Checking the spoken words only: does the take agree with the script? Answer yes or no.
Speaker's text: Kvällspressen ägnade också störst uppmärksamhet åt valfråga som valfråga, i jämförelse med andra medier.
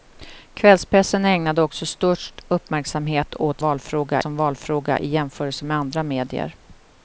yes